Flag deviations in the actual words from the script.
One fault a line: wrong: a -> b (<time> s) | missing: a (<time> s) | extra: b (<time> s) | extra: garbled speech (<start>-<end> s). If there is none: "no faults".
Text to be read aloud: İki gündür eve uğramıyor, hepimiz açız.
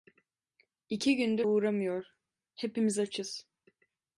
missing: eve (1.5 s)